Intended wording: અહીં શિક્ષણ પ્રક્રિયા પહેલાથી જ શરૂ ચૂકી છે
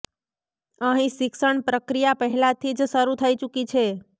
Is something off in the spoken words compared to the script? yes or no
yes